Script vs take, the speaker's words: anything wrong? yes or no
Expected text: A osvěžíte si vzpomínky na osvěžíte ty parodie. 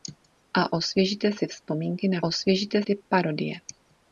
no